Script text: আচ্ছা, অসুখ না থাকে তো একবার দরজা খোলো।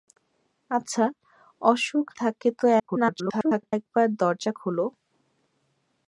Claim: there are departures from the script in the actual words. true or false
true